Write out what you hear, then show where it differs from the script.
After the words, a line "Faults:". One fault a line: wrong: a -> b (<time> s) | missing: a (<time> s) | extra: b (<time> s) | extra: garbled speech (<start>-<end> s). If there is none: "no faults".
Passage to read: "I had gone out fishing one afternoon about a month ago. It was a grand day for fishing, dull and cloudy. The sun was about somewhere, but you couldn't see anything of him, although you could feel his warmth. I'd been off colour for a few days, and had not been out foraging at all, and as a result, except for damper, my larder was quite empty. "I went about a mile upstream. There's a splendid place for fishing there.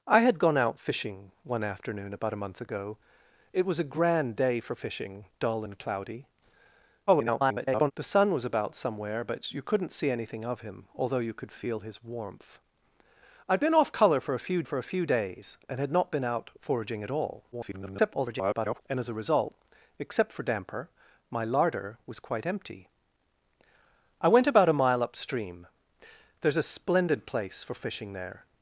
"I had gone out fishing one afternoon about a month ago. It was a grand day for fishing, dull and cloudy. [garbled] The sun was about somewhere, but you couldn't see anything of him, although you could feel his warmth. I'd been off colour for a few for a few days, and had not been out foraging at all, [garbled] and as a result, except for damper, my larder was quite empty. "I went about a mile upstream. There's a splendid place for fishing there.
Faults:
extra: garbled speech (7.1-7.9 s)
extra: for a few (14.6 s)
extra: garbled speech (17.5-18.8 s)